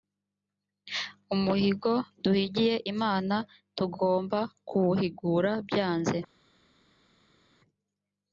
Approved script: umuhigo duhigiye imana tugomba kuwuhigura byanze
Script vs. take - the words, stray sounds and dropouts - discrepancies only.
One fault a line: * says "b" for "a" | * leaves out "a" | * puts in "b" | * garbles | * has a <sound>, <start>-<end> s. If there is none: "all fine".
all fine